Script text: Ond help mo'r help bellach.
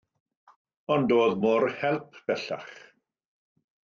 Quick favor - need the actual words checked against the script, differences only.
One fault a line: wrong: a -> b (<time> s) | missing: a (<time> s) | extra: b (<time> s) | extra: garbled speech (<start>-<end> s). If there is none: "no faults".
wrong: help -> doedd (1.1 s)